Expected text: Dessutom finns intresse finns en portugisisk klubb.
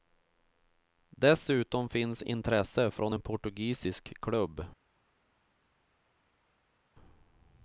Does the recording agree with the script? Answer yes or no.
no